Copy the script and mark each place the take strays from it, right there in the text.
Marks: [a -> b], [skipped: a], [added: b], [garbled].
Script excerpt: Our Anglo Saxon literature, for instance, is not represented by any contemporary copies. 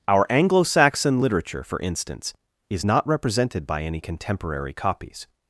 Our Anglo Saxon literature, for instance, is not represented by any contemporary copies.